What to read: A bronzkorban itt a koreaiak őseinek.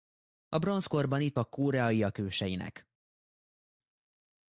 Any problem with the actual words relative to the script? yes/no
no